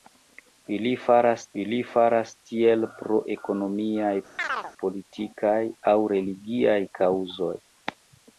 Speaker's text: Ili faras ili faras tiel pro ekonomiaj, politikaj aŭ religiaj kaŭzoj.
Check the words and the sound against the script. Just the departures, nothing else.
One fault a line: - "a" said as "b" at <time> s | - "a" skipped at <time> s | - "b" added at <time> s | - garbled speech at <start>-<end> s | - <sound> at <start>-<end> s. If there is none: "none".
- chirp at 4.4-4.7 s